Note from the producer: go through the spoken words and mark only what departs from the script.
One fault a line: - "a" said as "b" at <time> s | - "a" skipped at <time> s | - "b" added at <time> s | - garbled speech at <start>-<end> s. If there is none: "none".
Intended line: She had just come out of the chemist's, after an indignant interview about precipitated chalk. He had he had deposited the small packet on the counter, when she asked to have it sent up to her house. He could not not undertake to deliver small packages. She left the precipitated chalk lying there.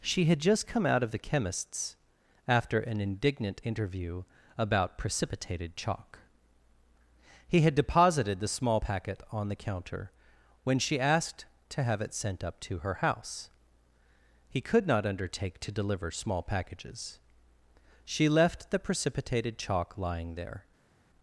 - "he had" skipped at 7.7 s
- "not" skipped at 15.1 s